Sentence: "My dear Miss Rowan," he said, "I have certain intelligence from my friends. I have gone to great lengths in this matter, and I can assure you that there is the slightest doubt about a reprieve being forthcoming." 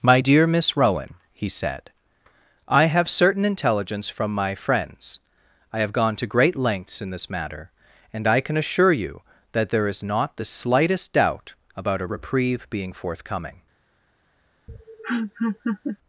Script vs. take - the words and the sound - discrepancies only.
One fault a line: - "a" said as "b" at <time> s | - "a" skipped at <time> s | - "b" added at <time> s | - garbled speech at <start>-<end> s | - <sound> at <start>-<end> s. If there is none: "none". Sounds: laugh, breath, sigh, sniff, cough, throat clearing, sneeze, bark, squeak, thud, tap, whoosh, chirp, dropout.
- "not" added at 10.0 s
- laugh at 14.7-16.0 s